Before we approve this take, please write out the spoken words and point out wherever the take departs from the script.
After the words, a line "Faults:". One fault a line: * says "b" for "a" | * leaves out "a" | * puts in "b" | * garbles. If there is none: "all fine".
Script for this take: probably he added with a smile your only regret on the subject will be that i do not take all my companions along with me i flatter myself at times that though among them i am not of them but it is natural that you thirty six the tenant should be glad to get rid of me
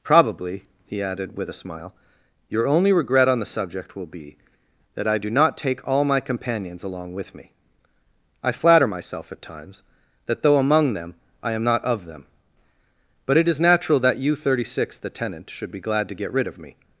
probably he added with a smile your only regret on the subject will be that i do not take all my companions along with me i flatter myself at times that though among them i am not of them but it is natural that you thirty six the tenant should be glad to get rid of me
Faults:
all fine